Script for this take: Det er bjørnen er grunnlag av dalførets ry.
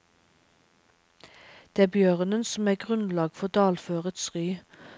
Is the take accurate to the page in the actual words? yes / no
no